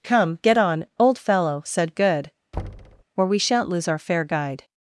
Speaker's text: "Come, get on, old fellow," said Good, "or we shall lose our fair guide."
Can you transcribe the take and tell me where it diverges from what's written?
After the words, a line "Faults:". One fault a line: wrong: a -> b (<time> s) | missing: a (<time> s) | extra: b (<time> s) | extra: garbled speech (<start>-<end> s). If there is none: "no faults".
"Come, get on, old fellow," said Good, "or we shan't lose our fair guide."
Faults:
wrong: shall -> shan't (3.4 s)